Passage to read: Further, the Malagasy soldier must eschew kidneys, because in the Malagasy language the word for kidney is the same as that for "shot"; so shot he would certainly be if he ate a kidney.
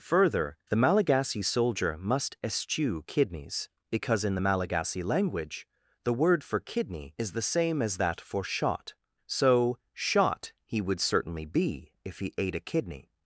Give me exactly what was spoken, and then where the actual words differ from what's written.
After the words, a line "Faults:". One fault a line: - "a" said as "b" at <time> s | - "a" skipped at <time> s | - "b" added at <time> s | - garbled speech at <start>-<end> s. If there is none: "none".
Further, the Malagasy soldier must eschew kidneys, because in the Malagasy language the word for kidney is the same as that for "shot"; so shot he would certainly be if he ate a kidney.
Faults:
none